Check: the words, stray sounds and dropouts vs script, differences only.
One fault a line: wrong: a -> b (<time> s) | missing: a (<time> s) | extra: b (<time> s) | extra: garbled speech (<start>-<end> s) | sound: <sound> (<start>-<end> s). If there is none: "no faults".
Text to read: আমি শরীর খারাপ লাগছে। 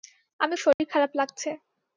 sound: dropout (0.7-0.8 s)